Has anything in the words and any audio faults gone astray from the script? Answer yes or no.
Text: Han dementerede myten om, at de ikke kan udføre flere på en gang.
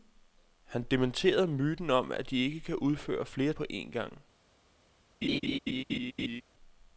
yes